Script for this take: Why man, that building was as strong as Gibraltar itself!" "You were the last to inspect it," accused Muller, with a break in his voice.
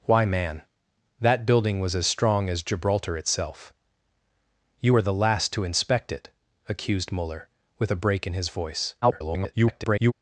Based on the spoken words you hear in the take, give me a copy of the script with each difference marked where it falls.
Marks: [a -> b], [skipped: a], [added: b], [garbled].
Why man, that building was as strong as Gibraltar itself!" "You were the last to inspect it," accused Muller, with a break in his voice. [garbled]